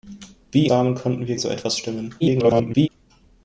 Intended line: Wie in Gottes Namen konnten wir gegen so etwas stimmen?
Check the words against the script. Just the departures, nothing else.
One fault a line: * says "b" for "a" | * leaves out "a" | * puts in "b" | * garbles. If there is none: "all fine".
* leaves out "in Gottes"
* leaves out "gegen"
* garbles